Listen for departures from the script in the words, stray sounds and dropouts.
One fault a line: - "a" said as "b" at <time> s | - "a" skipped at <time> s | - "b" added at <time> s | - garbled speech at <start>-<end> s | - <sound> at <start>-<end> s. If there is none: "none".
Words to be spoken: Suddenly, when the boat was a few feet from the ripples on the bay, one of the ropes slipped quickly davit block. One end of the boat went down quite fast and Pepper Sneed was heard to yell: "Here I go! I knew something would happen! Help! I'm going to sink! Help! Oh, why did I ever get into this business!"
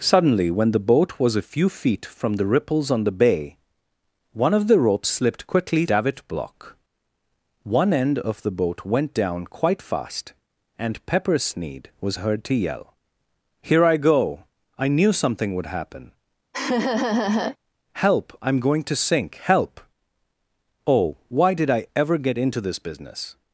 - laugh at 16.5-17.6 s